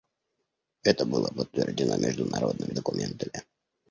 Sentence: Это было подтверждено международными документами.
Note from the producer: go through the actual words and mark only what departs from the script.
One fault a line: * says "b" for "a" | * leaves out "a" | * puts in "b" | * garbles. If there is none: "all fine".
all fine